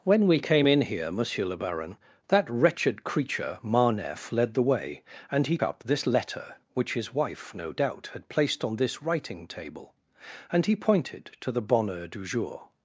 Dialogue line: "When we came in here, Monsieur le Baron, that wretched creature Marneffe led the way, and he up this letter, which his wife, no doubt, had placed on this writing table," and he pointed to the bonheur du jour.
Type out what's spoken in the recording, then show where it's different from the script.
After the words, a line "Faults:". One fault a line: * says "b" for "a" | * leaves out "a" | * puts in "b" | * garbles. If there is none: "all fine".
"When we came in here, Monsieur le Baron, that wretched creature Marneffe led the way, and he up this letter, which his wife, no doubt, had placed on this writing table," and he pointed to the bonheur du jour.
Faults:
all fine